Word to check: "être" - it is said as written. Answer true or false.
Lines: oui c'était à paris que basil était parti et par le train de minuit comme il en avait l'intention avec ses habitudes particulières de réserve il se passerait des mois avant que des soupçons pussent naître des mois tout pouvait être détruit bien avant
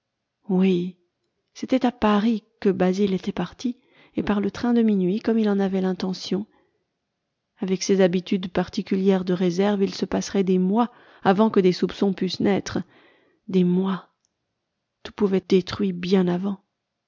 false